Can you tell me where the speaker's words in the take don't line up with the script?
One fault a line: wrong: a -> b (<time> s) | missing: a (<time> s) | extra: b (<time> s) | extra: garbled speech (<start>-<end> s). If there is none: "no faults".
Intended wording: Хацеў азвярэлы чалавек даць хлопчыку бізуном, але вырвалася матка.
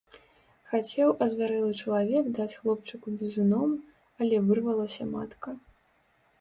no faults